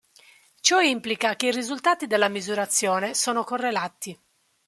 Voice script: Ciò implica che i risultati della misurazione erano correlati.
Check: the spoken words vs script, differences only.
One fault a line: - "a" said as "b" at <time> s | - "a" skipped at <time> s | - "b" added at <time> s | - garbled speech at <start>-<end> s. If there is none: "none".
- "erano" said as "sono" at 3.1 s